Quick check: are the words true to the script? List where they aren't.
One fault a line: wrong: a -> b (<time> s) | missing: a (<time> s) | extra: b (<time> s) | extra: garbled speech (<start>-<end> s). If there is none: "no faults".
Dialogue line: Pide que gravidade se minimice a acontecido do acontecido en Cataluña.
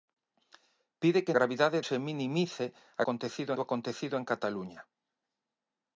no faults